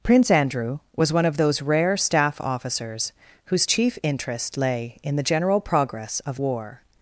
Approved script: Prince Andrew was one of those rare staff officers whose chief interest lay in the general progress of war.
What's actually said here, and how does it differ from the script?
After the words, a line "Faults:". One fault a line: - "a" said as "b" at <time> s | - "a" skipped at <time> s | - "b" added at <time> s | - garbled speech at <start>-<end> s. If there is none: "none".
Prince Andrew was one of those rare staff officers whose chief interest lay in the general progress of war.
Faults:
none